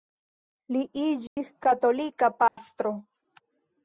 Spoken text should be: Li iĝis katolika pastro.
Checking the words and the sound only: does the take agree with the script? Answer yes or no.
no